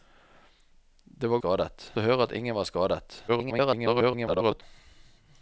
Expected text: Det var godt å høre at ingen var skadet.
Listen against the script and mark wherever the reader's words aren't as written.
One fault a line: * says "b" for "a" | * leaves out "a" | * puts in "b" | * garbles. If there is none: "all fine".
* says "skadet" for "godt"
* garbles